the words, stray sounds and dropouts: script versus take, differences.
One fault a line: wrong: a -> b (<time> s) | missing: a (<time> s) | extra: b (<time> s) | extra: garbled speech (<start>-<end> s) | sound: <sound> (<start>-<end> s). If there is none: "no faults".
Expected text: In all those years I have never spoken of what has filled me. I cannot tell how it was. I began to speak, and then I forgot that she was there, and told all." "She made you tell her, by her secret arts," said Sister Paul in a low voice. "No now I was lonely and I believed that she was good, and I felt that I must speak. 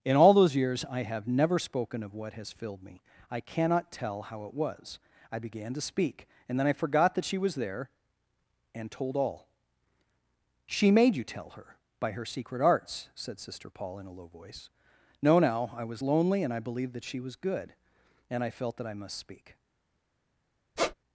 sound: squeak (20.8-20.9 s)